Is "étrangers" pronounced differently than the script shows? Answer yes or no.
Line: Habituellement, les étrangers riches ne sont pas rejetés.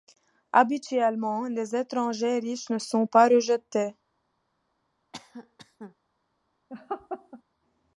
no